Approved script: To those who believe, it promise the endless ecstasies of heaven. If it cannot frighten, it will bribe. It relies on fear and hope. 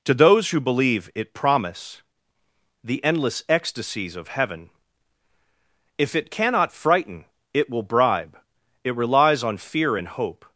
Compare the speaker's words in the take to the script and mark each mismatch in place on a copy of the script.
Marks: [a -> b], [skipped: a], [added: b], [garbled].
To those who believe, it promise the endless ecstasies of heaven. If it cannot frighten, it will bribe. It relies on fear and hope.